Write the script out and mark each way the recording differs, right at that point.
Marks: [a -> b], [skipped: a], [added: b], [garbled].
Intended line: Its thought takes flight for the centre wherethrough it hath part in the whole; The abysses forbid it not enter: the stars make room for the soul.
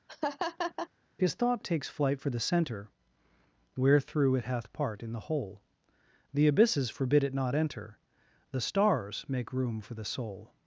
[Its -> His] thought takes flight for the centre wherethrough it hath part in the whole; The abysses forbid it not enter: the stars make room for the soul.